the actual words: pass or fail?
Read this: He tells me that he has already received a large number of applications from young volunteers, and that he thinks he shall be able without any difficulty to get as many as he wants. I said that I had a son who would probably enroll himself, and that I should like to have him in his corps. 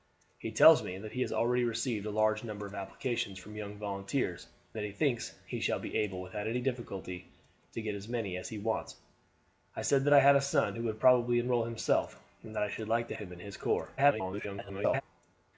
fail